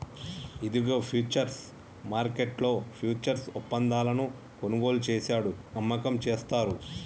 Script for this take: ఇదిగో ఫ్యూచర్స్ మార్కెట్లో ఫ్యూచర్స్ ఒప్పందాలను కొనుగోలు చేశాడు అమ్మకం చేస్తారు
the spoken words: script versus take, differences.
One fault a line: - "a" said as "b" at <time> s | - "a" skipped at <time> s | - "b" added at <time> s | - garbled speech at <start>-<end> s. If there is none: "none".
none